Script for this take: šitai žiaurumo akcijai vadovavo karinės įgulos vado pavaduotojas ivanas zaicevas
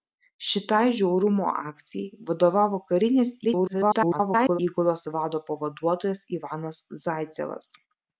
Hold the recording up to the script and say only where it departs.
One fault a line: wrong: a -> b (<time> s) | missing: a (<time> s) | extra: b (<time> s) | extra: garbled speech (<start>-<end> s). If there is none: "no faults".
extra: garbled speech (3.4-4.6 s)